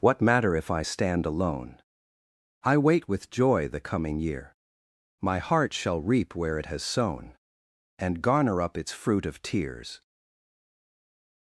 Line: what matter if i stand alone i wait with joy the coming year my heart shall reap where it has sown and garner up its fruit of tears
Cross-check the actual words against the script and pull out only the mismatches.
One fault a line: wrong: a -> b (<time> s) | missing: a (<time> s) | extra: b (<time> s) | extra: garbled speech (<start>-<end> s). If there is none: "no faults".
no faults